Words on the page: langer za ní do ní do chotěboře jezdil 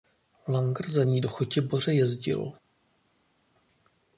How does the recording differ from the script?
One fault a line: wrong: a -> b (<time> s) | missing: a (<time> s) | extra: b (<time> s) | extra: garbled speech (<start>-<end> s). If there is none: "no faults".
missing: ní do (1.3 s)